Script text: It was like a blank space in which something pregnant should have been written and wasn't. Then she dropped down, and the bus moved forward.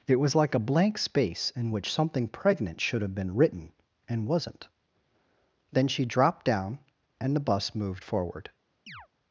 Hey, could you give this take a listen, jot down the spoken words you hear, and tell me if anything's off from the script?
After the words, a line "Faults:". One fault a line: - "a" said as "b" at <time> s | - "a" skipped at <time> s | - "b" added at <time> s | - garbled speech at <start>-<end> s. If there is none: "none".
It was like a blank space in which something pregnant should have been written and wasn't. Then she dropped down, and the bus moved forward.
Faults:
none